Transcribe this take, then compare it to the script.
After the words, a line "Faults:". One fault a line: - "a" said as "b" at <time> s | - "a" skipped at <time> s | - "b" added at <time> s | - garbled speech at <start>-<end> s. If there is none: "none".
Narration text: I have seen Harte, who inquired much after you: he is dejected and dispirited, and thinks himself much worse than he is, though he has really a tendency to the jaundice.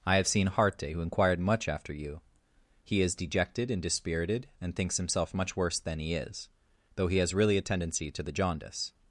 I have seen Harte, who inquired much after you: he is dejected and dispirited, and thinks himself much worse than he is, though he has really a tendency to the jaundice.
Faults:
none